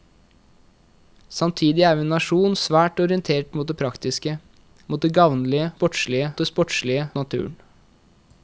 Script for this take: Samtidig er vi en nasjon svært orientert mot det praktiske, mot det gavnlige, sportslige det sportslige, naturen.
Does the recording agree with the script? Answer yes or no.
yes